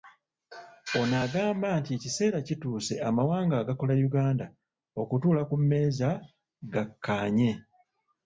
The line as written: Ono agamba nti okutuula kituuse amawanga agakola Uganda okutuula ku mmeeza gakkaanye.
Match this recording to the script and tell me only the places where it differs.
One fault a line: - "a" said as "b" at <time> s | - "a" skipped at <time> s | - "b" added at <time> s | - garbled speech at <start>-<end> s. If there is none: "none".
- "okutuula" said as "ekiseera" at 2.0 s